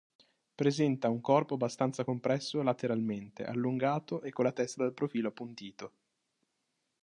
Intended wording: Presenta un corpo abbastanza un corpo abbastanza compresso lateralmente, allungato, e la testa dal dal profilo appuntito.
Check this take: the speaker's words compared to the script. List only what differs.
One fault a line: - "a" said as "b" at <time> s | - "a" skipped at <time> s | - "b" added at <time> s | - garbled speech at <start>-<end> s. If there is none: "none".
- "un corpo abbastanza" skipped at 2.0 s
- "con" added at 4.3 s
- "dal" skipped at 4.9 s